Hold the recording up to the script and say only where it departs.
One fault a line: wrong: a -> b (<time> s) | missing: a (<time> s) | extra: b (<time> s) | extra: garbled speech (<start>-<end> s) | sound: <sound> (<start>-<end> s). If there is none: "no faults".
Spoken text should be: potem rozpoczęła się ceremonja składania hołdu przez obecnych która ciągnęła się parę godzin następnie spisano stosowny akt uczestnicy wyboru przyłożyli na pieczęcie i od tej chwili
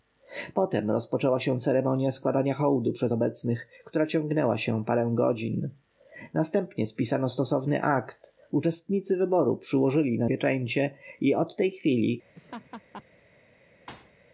sound: laugh (12.3-13.0 s)
sound: thud (13.9-14.1 s)